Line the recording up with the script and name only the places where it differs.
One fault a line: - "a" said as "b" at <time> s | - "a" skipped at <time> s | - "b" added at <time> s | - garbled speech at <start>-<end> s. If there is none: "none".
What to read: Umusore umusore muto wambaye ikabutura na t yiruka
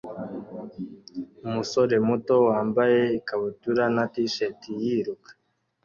- "umusore" skipped at 1.9 s
- "shirt" added at 4.3 s